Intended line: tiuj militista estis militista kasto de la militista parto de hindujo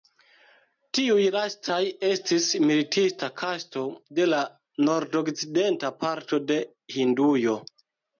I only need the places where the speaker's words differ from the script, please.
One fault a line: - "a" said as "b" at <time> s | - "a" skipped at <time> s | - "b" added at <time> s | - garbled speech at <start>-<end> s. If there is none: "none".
- "militista" said as "lastaj" at 1.4 s
- "militista" said as "nordokcidenta" at 4.9 s